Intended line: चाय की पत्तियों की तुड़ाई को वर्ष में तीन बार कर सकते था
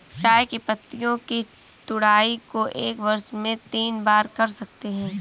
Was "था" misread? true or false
true